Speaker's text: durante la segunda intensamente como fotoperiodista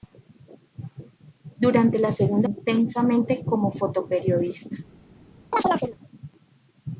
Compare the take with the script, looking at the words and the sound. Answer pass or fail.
fail